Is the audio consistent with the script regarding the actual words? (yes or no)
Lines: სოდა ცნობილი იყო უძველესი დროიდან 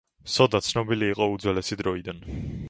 yes